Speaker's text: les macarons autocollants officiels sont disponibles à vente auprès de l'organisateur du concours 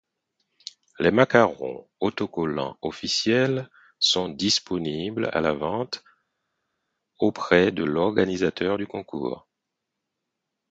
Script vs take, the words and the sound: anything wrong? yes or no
yes